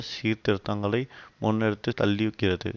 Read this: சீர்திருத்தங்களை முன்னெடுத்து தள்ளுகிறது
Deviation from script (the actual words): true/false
false